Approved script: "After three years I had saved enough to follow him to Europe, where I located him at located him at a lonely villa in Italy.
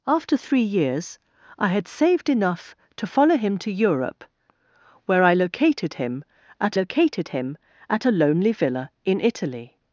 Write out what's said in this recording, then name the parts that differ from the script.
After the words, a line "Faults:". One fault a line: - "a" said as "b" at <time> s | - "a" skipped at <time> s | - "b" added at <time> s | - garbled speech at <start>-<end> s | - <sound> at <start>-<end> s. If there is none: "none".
"After three years I had saved enough to follow him to Europe, where I located him at located him at a lonely villa in Italy.
Faults:
none